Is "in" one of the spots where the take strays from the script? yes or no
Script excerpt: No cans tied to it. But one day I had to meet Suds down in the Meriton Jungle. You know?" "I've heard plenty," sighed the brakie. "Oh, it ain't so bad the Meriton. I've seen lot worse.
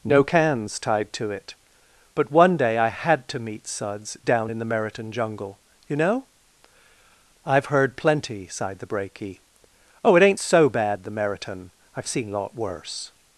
no